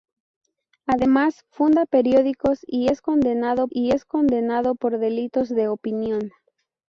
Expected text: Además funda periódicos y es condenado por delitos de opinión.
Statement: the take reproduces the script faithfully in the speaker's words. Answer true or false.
false